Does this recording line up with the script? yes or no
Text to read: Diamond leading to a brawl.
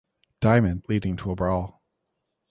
yes